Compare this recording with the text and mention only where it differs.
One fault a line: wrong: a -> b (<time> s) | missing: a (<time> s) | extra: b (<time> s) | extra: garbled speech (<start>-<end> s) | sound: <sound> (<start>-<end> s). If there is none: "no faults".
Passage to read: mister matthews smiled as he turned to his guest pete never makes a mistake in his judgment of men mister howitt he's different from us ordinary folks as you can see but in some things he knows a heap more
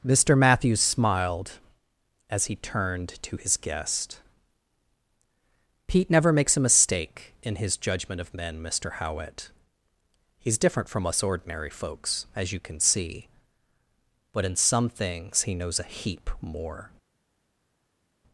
no faults